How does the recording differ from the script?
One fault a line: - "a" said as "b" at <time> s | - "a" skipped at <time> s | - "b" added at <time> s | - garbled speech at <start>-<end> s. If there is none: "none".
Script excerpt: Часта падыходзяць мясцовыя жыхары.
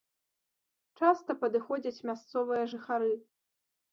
none